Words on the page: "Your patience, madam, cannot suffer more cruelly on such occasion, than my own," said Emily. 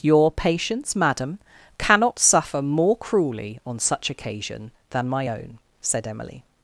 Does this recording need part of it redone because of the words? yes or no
no